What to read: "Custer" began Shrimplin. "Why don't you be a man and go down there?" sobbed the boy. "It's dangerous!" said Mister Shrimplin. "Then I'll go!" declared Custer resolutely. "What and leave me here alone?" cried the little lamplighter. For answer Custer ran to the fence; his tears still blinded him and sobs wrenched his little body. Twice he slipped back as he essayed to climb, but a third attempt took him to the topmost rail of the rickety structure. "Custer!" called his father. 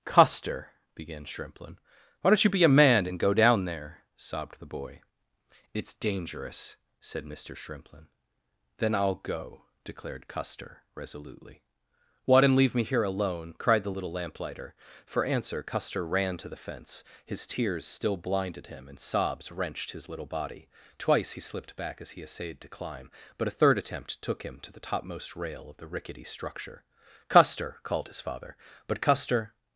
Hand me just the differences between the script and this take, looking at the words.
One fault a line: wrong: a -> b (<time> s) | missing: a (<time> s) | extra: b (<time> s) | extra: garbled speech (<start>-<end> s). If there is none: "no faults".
extra: But Custer (28.9 s)